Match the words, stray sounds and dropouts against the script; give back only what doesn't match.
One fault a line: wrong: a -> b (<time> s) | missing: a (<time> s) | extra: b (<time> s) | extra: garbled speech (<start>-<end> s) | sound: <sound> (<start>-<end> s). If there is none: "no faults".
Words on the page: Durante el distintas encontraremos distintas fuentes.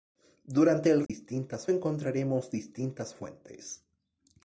sound: dropout (1.1-1.1 s)